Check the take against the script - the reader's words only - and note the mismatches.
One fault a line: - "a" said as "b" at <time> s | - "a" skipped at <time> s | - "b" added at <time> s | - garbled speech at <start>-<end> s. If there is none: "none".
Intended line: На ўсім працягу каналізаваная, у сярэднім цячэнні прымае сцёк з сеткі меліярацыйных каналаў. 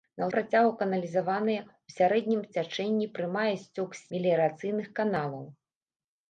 - "ўсім" skipped at 0.3 s
- "сеткі" skipped at 4.1 s